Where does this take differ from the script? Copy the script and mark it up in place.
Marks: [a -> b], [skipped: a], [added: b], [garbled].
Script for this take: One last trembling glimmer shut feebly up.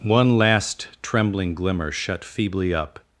One last trembling glimmer shut feebly up.